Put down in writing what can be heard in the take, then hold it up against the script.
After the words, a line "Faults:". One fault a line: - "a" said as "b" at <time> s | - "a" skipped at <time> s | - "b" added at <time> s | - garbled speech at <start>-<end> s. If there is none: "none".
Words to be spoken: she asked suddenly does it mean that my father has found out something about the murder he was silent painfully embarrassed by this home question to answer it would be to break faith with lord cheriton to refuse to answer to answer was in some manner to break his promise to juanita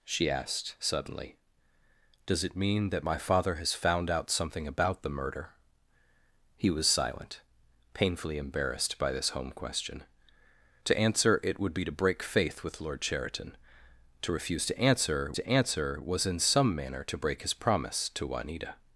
she asked suddenly does it mean that my father has found out something about the murder he was silent painfully embarrassed by this home question to answer it would be to break faith with lord cheriton to refuse to answer to answer was in some manner to break his promise to juanita
Faults:
none